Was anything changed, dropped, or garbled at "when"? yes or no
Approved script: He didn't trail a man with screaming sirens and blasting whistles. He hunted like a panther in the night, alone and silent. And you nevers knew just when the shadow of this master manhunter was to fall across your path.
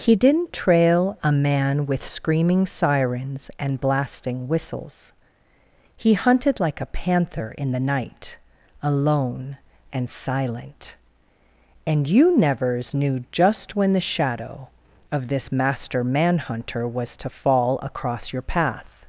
no